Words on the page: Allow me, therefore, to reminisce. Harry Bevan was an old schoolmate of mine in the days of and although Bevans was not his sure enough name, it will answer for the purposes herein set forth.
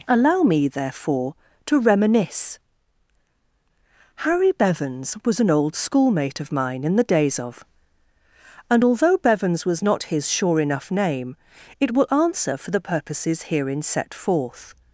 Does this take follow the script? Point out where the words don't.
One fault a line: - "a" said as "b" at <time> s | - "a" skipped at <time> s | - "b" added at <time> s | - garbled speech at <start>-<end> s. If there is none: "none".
- "Bevan" said as "Bevans" at 4.5 s